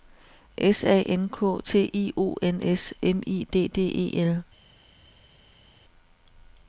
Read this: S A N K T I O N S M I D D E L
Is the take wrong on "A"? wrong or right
right